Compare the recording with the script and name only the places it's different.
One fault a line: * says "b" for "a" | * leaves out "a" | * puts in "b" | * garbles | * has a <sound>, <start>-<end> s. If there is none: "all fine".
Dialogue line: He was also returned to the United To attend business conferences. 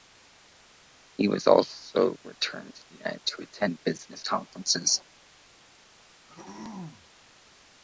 * has a throat clearing, 6.3-7.1 s